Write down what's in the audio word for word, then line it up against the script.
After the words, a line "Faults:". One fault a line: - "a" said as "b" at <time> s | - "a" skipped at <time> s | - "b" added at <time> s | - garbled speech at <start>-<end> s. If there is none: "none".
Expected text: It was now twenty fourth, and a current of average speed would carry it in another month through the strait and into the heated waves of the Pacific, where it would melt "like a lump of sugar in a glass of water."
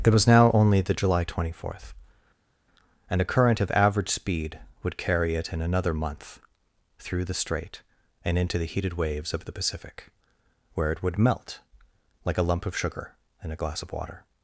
It was now only the July twenty fourth, and a current of average speed would carry it in another month through the strait and into the heated waves of the Pacific, where it would melt "like a lump of sugar in a glass of water."
Faults:
- "only the July" added at 0.5 s